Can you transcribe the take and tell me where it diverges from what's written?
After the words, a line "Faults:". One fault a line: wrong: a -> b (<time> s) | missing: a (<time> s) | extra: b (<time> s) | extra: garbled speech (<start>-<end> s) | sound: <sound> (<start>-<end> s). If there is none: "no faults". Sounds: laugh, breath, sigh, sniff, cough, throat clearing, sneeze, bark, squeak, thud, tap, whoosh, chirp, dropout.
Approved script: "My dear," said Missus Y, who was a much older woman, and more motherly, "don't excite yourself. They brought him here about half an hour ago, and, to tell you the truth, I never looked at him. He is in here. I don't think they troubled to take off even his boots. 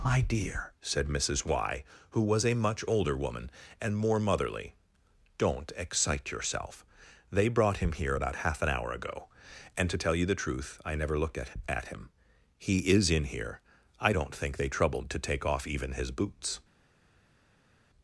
"My dear," said Missus Y, who was a much older woman, and more motherly, "don't excite yourself. They brought him here about half an hour ago, and, to tell you the truth, I never looked at at him. He is in here. I don't think they troubled to take off even his boots.
Faults:
extra: at (11.7 s)